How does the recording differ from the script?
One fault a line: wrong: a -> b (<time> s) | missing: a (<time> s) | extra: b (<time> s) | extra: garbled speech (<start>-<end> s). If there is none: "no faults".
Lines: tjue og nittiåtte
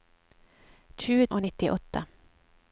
no faults